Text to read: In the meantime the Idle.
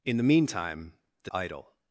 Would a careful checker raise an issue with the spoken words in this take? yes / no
no